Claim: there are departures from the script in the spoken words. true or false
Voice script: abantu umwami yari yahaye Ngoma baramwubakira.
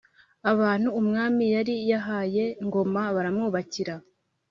false